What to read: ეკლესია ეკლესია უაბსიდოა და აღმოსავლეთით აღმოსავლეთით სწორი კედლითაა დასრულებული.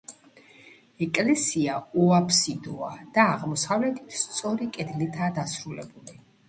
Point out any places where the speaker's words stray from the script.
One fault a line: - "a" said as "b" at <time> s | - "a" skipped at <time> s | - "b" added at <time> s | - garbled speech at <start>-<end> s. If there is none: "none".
- "ეკლესია" skipped at 1.8 s
- "აღმოსავლეთით" skipped at 4.2 s